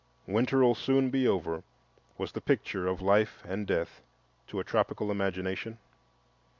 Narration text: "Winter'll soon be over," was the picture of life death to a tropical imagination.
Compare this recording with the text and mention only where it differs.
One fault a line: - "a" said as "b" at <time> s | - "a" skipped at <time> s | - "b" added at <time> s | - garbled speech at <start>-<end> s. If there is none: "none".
- "and" added at 3.5 s